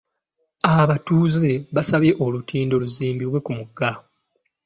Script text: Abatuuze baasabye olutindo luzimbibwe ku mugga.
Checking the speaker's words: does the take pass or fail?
pass